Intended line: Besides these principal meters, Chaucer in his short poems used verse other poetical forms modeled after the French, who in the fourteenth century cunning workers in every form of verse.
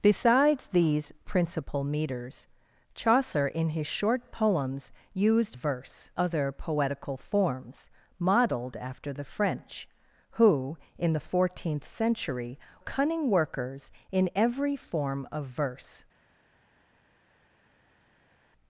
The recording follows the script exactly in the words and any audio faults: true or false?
true